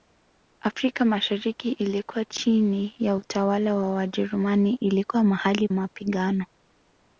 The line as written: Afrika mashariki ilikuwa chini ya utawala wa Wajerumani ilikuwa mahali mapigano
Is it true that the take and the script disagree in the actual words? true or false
false